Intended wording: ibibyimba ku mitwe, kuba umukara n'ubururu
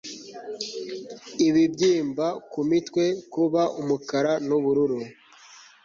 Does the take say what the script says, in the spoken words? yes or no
yes